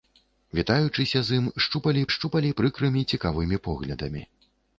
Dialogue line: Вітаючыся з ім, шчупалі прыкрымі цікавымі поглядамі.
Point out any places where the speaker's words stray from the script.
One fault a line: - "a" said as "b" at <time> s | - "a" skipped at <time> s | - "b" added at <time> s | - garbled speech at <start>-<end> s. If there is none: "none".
- "шчупалі" added at 2.2 s